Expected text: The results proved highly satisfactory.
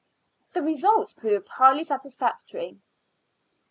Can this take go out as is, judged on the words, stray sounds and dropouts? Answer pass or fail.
pass